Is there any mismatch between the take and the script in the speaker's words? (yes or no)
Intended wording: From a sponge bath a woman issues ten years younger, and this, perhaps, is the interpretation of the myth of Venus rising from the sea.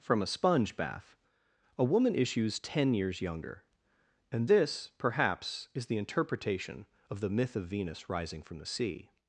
no